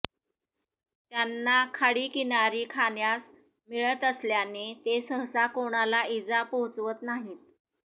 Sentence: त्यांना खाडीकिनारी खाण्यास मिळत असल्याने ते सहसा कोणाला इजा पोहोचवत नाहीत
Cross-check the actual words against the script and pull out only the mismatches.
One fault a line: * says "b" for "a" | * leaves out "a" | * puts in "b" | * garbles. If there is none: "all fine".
all fine